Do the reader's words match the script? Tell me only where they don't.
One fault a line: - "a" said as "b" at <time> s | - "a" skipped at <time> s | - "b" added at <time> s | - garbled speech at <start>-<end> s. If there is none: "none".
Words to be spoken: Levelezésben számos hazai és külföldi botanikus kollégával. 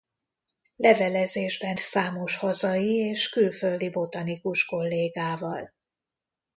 none